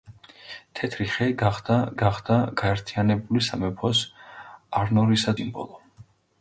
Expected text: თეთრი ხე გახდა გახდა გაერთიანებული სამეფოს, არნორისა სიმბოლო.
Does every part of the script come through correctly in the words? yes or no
yes